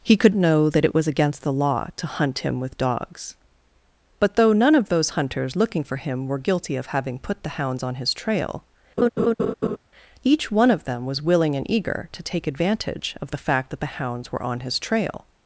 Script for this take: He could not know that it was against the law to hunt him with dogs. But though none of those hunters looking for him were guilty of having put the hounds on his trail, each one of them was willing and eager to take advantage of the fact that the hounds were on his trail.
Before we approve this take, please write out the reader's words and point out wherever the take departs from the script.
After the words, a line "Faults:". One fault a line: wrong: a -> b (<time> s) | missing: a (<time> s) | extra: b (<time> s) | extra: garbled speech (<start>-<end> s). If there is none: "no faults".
He could know that it was against the law to hunt him with dogs. But though none of those hunters looking for him were guilty of having put the hounds on his trail, each one of them was willing and eager to take advantage of the fact that the hounds were on his trail.
Faults:
missing: not (0.3 s)